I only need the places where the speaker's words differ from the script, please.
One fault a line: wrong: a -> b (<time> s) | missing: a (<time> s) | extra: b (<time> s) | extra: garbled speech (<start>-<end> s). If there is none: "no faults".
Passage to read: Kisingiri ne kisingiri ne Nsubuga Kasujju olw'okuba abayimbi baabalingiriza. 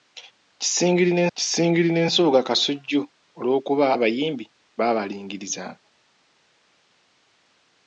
no faults